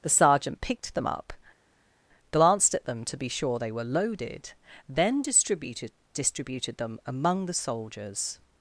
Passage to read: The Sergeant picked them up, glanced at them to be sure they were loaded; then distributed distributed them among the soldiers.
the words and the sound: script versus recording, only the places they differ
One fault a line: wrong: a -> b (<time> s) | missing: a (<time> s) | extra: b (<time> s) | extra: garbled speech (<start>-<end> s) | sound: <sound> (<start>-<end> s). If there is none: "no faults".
no faults